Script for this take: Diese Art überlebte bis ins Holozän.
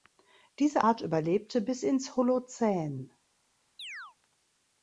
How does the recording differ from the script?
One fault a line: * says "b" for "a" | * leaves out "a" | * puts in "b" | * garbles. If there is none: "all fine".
all fine